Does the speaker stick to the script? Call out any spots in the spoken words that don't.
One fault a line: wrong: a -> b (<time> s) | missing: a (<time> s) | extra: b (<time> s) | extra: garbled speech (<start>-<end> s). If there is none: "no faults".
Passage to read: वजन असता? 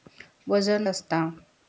no faults